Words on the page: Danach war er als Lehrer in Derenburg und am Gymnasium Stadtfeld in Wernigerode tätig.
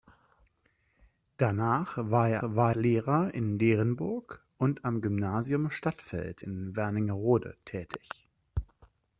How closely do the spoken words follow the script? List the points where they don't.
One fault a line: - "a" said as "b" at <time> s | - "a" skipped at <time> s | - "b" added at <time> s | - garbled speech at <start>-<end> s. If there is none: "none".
- "als" said as "war" at 2.4 s